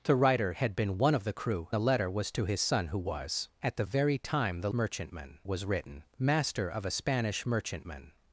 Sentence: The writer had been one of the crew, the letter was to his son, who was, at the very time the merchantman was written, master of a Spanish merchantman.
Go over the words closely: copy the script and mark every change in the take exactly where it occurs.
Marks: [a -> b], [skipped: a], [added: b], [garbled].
The writer had been one of the crew, the letter was to his son, who was, at the very time the merchantman was written, master of a Spanish merchantman.